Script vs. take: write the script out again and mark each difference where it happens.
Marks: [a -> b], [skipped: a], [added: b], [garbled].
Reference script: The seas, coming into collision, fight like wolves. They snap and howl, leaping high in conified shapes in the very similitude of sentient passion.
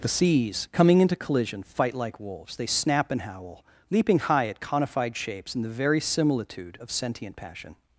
The seas, coming into collision, fight like wolves. They snap and howl, leaping high [in -> at] conified shapes in the very similitude of sentient passion.